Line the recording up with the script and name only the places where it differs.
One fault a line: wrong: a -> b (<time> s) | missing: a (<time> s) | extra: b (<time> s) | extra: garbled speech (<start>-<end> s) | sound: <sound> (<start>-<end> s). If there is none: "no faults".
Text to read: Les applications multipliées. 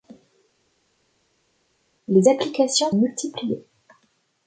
no faults